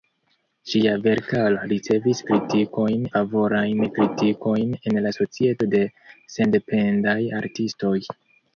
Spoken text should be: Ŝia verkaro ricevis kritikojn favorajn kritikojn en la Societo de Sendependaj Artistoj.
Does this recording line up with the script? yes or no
yes